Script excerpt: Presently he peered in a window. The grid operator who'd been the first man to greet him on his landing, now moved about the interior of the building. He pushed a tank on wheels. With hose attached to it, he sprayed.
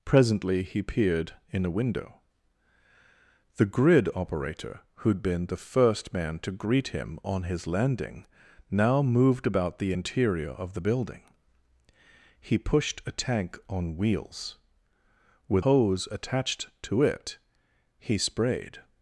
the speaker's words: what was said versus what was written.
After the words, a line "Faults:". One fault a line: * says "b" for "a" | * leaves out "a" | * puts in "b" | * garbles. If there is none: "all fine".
Presently he peered in a window. The grid operator who'd been the first man to greet him on his landing, now moved about the interior of the building. He pushed a tank on wheels. With hose attached to it, he sprayed.
Faults:
all fine